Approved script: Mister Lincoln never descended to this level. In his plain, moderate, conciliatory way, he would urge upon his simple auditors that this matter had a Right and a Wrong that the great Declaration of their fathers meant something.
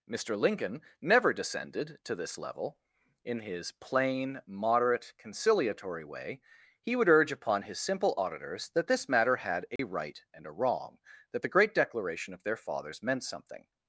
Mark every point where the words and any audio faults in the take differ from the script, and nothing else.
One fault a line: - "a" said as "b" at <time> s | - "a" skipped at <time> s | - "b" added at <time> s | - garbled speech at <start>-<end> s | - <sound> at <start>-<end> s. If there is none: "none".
- dropout at 9.8-9.8 s